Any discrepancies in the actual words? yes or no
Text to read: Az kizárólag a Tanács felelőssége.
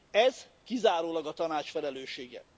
yes